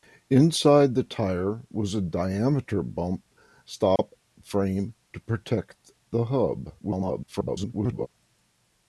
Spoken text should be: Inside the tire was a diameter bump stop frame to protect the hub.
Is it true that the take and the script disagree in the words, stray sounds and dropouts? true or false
true